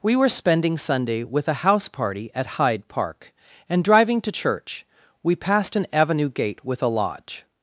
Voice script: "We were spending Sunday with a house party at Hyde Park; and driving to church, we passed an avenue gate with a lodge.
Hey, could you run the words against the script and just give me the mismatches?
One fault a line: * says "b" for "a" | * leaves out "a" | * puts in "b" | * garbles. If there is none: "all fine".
all fine